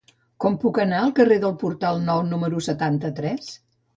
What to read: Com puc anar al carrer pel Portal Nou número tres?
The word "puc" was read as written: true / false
true